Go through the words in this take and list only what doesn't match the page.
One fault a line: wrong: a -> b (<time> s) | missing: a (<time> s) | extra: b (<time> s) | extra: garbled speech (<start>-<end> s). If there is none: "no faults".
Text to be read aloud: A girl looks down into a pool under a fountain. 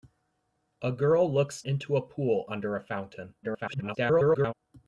missing: down (1.6 s)
extra: garbled speech (3.4-4.5 s)